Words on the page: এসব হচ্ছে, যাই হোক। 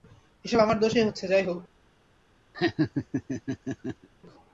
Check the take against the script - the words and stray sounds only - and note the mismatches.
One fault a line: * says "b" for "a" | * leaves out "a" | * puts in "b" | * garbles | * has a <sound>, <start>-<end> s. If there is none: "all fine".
* puts in "আমার দোষেই"
* has a laugh, 2.5-4.1 s